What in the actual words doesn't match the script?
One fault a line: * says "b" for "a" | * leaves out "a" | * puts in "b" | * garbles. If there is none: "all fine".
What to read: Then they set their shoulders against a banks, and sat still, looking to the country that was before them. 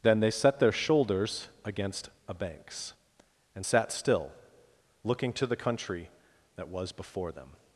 all fine